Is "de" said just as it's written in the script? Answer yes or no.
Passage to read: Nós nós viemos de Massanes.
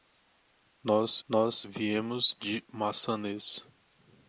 yes